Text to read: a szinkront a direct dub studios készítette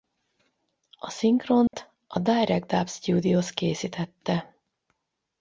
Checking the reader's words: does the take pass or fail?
pass